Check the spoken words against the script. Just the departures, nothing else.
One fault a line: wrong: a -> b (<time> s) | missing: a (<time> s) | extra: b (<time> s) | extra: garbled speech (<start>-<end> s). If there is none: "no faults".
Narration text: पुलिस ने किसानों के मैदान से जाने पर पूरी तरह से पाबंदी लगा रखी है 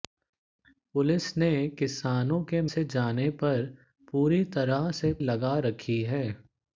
missing: मैदान (2.6 s)
missing: पाबंदी (5.1 s)